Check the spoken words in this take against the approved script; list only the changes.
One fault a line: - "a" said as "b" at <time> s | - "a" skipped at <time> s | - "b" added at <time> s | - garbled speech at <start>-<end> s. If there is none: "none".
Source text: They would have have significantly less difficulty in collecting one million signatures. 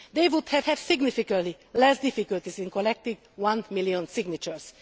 none